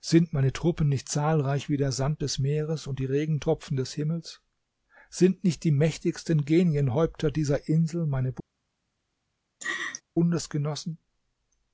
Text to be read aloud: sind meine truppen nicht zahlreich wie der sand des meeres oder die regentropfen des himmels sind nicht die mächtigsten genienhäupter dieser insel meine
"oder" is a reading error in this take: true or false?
true